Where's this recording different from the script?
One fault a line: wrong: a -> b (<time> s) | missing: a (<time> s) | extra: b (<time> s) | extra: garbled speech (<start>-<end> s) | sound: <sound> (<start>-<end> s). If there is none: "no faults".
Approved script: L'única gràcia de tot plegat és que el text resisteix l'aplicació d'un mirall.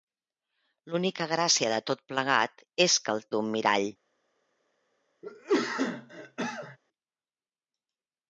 missing: text resisteix l'aplicació (3.2 s)
sound: cough (5.2-6.8 s)